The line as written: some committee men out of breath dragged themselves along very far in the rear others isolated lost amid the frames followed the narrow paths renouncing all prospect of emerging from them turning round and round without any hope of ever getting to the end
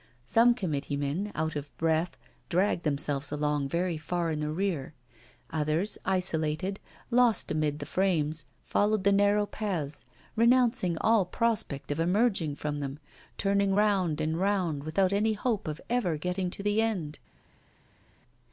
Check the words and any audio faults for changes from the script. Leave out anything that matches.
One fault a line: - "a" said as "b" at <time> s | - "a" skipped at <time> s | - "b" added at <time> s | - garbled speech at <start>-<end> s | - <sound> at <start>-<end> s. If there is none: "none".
none